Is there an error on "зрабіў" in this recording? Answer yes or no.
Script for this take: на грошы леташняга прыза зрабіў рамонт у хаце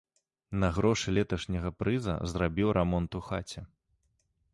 no